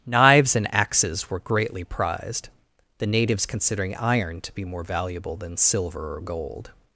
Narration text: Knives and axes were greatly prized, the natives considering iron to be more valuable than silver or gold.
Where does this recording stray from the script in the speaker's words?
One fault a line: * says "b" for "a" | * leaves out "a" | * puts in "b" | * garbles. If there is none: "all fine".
all fine